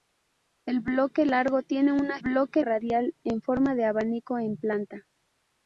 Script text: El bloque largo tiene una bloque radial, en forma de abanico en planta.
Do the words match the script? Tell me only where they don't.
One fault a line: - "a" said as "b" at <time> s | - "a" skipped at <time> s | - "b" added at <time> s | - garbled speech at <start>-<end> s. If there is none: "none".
none